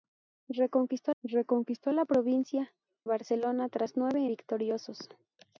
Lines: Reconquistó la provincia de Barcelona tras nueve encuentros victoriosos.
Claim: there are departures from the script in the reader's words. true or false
true